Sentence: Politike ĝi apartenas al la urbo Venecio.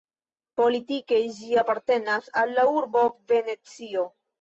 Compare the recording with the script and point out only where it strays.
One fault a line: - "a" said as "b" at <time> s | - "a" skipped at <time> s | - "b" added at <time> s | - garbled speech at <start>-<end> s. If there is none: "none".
none